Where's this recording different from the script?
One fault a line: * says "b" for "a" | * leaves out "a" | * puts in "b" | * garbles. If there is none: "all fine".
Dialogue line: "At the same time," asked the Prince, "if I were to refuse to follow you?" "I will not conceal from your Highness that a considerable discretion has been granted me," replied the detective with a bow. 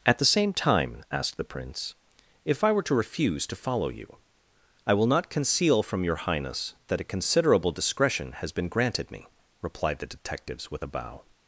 * says "detectives" for "detective"